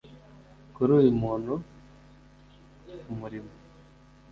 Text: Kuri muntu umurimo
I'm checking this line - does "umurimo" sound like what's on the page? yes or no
yes